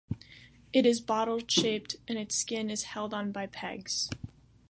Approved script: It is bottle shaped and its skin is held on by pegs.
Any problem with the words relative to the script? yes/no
no